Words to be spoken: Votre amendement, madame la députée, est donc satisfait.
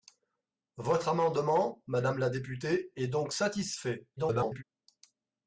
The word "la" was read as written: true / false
true